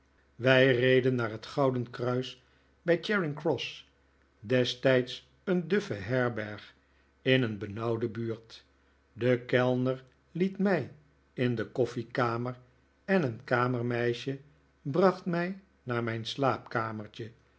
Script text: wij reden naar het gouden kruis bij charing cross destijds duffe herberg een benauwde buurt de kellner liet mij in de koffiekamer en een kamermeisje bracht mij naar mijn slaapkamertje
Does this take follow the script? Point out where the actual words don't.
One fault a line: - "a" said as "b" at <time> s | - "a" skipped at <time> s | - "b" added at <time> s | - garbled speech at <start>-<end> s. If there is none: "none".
- "een" added at 5.4 s
- "in" added at 7.2 s